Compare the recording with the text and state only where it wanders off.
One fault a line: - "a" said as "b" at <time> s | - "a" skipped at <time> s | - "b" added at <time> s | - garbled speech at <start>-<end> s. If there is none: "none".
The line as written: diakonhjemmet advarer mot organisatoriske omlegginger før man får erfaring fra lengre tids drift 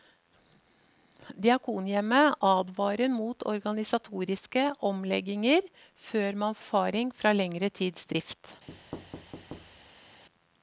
- "får" skipped at 6.6 s